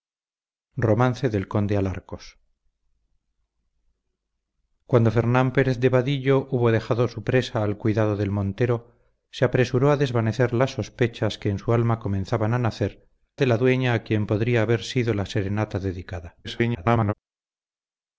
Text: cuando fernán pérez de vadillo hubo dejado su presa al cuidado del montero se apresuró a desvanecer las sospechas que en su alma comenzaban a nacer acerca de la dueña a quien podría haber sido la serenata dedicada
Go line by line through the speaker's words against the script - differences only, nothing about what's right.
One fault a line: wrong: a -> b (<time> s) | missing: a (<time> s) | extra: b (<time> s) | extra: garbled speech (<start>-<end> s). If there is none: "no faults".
missing: acerca (13.1 s)
extra: garbled speech (16.4-17.1 s)